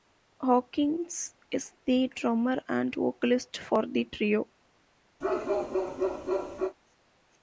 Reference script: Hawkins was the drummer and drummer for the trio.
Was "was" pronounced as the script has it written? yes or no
no